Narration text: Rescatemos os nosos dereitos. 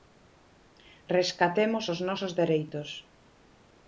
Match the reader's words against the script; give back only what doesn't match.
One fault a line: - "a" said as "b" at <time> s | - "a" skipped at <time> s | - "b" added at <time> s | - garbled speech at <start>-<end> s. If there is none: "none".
none